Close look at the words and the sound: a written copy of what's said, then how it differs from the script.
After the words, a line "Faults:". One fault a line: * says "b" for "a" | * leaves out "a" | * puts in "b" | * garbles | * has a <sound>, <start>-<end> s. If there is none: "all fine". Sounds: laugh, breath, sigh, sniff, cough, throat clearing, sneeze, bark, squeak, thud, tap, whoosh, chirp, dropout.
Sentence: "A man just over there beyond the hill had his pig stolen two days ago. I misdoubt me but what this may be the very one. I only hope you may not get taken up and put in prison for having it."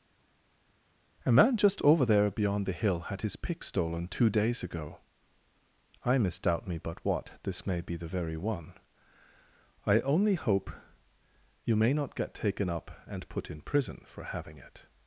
"A man just over there beyond the hill had his pick stolen two days ago. I misdoubt me but what this may be the very one. I only hope you may not get taken up and put in prison for having it."
Faults:
* says "pick" for "pig"